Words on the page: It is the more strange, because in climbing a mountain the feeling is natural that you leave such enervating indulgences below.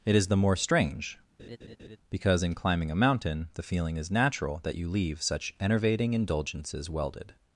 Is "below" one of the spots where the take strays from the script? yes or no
yes